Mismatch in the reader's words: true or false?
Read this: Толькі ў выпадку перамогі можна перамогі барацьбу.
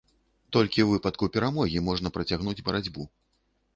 true